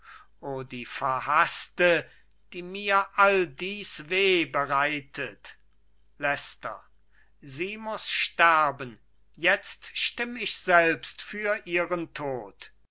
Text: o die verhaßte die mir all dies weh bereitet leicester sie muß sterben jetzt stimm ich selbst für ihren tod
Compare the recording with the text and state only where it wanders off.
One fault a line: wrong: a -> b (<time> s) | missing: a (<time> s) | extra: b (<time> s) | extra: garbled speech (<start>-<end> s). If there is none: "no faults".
no faults